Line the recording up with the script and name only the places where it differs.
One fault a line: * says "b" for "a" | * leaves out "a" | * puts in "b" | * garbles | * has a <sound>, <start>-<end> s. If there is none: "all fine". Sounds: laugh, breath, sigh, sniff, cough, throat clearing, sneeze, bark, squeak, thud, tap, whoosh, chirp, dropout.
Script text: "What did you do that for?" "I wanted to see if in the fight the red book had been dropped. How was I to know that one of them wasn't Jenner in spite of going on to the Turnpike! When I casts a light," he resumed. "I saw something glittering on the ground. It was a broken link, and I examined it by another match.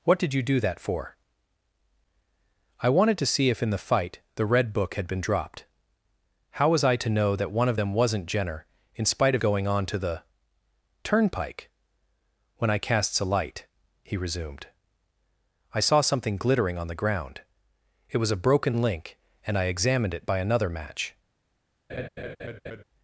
* has a laugh, 21.9-22.8 s